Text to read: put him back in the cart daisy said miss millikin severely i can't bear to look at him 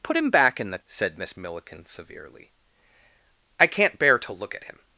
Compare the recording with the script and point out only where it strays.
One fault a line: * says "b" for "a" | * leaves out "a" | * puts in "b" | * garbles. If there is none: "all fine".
* leaves out "cart daisy"